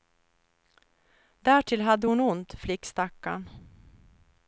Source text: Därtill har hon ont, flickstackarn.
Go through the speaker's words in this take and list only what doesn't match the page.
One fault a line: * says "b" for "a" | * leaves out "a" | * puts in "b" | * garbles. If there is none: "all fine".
* says "hade" for "har"